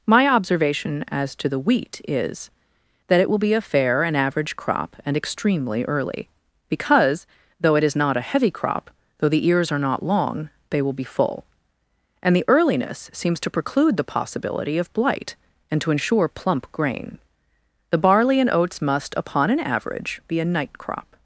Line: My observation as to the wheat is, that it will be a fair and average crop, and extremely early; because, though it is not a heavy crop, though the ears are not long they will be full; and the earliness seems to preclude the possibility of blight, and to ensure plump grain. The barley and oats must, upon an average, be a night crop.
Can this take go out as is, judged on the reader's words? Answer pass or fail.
pass